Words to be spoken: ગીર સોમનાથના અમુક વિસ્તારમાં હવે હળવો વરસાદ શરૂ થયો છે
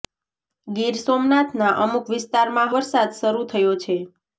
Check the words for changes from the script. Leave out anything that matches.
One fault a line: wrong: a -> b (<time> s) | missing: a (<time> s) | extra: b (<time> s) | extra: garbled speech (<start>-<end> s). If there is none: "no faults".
missing: હવે હળવો (2.8 s)